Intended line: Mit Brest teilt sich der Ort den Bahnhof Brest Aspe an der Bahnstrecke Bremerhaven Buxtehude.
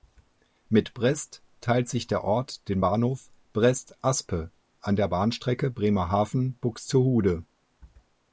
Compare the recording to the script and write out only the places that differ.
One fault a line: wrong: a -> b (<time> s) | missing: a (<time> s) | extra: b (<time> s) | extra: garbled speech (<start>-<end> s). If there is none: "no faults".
no faults